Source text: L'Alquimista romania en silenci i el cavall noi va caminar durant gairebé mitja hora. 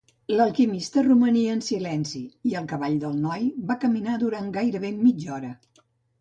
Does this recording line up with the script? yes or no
no